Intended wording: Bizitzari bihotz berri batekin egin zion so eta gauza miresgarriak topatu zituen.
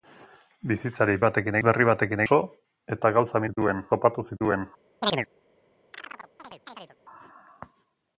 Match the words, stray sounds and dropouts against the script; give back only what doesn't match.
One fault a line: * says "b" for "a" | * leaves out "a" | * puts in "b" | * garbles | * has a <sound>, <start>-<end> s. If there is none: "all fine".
* says "batekin" for "bihotz"
* leaves out "egin zion"
* says "zituen" for "miresgarriak"
* has a chirp, 5.0-5.3 s
* has a chirp, 5.9-7.0 s